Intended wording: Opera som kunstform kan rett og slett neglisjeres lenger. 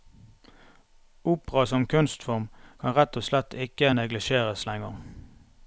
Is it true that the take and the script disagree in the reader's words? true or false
true